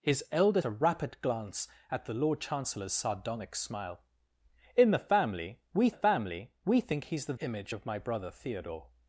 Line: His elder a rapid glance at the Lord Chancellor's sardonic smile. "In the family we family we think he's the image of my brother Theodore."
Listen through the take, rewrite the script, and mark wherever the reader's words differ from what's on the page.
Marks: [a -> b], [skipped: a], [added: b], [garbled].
His elder a rapid glance at the Lord Chancellor's sardonic smile. "In the family we family we think he's the image of my brother Theodore."